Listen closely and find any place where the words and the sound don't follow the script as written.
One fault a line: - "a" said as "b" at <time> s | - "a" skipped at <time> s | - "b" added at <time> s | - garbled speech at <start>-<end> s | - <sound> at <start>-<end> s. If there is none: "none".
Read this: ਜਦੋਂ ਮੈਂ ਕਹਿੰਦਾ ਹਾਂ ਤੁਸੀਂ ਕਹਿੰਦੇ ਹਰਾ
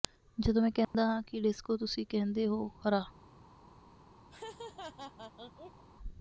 - dropout at 0.8-0.9 s
- "ਕਿ ਡਿਸਕੋ" added at 1.2 s
- "ਹੋ" added at 2.5 s
- laugh at 4.3-5.8 s